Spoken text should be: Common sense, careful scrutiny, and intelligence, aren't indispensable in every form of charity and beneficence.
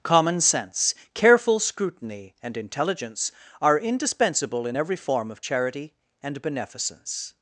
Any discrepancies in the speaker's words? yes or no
yes